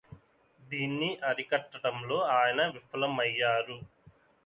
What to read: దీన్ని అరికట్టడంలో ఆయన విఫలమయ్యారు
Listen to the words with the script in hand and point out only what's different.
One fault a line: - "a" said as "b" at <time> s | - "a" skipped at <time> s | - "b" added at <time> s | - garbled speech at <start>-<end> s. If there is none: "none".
none